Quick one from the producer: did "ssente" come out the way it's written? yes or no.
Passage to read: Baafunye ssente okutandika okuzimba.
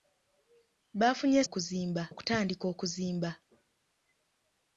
no